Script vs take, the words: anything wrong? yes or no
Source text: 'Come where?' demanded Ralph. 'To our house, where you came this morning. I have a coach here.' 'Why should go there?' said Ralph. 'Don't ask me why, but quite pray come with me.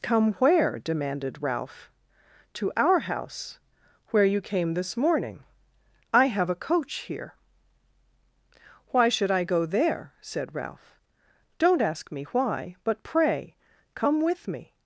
yes